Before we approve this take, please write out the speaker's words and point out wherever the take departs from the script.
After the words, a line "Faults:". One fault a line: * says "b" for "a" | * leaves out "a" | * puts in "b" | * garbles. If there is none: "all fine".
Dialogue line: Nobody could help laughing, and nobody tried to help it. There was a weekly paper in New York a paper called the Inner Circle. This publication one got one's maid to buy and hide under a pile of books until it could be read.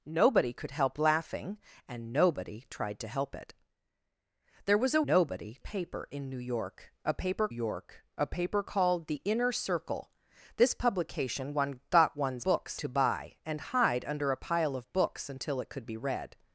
Nobody could help laughing, and nobody tried to help it. There was a nobody paper in New York a paper York a paper called the Inner Circle. This publication one got one's books to buy and hide under a pile of books until it could be read.
Faults:
* says "nobody" for "weekly"
* puts in "York a paper"
* says "books" for "maid"